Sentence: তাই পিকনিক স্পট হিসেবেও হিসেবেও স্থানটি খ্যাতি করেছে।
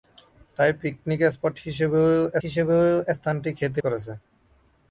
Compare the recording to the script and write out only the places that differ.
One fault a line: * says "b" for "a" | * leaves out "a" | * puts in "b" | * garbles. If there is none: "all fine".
all fine